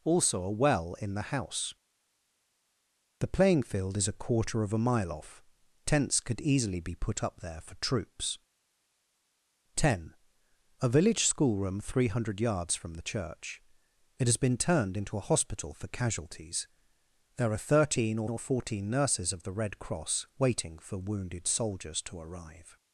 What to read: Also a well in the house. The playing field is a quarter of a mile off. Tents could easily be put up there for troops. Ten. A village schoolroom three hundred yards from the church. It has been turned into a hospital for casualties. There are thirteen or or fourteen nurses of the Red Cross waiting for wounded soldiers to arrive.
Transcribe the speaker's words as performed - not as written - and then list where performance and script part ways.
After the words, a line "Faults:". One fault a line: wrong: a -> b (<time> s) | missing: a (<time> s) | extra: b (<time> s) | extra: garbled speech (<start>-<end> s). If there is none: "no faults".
Also a well in the house. The playing field is a quarter of a mile off. Tents could easily be put up there for troops. Ten. A village schoolroom three hundred yards from the church. It has been turned into a hospital for casualties. There are thirteen or or fourteen nurses of the Red Cross waiting for wounded soldiers to arrive.
Faults:
no faults